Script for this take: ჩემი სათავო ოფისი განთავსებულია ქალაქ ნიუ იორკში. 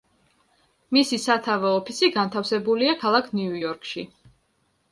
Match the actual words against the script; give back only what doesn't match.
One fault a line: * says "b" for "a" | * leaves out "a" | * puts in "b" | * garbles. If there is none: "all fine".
* says "მისი" for "ჩემი"